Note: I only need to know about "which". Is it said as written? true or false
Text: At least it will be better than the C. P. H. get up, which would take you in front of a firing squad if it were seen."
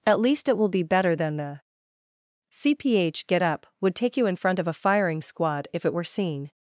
false